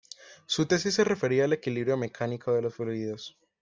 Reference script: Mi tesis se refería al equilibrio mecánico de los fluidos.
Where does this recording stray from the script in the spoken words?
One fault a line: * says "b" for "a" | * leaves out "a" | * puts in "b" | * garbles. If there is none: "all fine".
* says "Su" for "Mi"